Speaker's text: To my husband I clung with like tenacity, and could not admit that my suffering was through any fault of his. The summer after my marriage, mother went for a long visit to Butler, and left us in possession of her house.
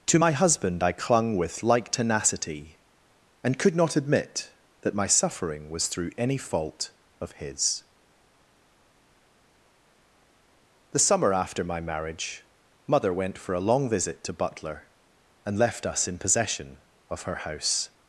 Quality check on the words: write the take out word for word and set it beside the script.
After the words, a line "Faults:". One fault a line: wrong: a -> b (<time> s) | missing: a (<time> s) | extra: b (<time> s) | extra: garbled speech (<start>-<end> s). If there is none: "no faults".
To my husband I clung with like tenacity, and could not admit that my suffering was through any fault of his. The summer after my marriage, mother went for a long visit to Butler, and left us in possession of her house.
Faults:
no faults